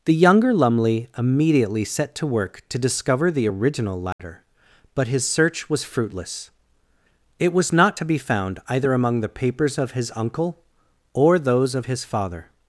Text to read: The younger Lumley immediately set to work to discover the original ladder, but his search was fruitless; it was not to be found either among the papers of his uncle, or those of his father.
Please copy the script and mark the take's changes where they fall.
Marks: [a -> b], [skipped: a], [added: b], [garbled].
The younger Lumley immediately set to work to discover the original ladder, but his search was fruitless; it was not to be found either among the papers of his uncle, or those of his father.